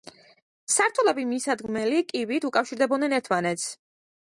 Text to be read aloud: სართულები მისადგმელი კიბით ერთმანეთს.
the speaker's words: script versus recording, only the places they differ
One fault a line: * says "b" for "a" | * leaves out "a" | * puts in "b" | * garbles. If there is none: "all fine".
* puts in "უკავშირდებოდნენ"